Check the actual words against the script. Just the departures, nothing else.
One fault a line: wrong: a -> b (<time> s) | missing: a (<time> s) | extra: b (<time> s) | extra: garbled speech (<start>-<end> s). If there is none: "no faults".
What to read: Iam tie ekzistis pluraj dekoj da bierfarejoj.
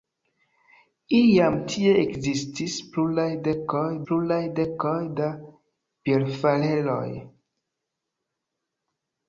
extra: pluraj dekoj (4.1 s)